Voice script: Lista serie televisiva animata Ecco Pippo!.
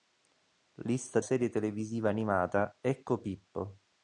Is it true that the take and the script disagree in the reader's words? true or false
false